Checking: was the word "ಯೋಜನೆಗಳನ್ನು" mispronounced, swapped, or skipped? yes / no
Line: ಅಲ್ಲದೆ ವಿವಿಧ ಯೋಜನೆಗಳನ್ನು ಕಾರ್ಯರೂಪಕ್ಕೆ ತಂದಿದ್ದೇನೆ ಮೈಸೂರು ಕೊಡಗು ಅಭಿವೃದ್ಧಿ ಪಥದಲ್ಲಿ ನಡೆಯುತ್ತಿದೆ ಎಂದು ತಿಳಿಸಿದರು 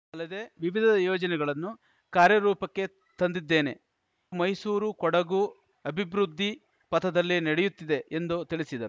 no